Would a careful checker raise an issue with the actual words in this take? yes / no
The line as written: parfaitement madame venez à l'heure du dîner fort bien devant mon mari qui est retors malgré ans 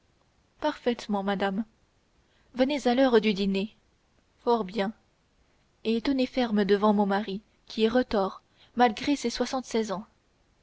yes